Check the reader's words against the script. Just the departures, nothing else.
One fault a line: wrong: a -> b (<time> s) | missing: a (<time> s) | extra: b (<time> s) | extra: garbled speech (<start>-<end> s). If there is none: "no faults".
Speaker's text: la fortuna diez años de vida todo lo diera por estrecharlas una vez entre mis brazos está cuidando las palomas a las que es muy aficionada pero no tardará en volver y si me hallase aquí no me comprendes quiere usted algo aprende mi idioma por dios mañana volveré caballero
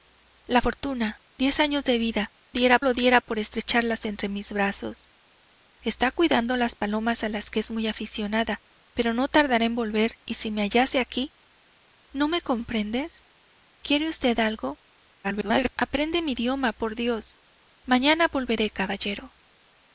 wrong: todo -> diera (2.5 s)
missing: una vez (4.0 s)
extra: garbled speech (15.2-15.7 s)